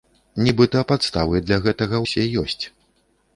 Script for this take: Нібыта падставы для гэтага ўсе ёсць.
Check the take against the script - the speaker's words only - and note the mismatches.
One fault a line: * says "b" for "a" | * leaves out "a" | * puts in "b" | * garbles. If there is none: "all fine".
all fine